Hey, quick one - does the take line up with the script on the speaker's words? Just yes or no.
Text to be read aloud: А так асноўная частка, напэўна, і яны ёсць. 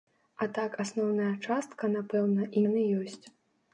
yes